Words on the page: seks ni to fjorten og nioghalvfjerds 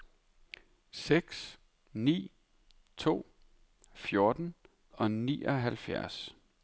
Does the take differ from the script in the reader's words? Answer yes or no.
no